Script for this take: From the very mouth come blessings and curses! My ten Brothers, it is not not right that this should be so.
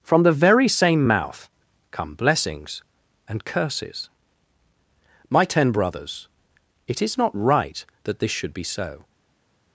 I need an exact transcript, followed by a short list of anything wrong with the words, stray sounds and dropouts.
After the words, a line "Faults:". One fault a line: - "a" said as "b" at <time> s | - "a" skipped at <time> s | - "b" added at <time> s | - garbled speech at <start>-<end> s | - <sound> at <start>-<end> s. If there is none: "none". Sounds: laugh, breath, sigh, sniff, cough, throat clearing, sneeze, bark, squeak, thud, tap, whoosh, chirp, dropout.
From the very same mouth come blessings and curses! My ten Brothers, it is not right that this should be so.
Faults:
- "same" added at 0.7 s
- "not" skipped at 7.3 s